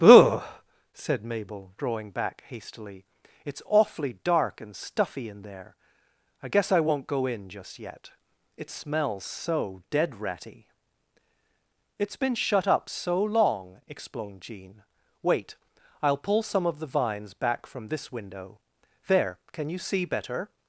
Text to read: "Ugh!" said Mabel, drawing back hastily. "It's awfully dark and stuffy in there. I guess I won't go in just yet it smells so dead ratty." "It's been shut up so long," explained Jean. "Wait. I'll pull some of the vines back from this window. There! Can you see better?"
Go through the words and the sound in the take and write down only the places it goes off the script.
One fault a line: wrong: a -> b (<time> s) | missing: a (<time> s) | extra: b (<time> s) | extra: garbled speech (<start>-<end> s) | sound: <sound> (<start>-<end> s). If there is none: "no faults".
no faults